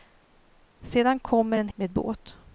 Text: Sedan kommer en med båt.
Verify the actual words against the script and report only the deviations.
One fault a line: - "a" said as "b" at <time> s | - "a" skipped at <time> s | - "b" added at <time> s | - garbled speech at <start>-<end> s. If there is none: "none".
none